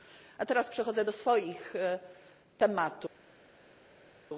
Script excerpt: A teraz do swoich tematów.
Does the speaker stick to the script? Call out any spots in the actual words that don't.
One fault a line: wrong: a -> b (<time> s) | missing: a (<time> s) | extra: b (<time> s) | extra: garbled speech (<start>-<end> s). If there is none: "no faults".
extra: przechodzę (0.7 s)